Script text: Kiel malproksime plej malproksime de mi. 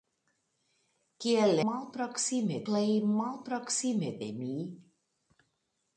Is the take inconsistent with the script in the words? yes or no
no